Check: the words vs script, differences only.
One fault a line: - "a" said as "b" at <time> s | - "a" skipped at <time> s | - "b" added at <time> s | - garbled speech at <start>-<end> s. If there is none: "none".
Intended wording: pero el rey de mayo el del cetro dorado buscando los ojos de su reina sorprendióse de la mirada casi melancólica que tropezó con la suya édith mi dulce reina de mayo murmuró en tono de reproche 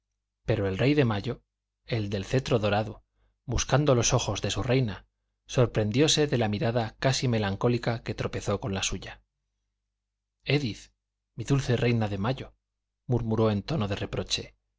none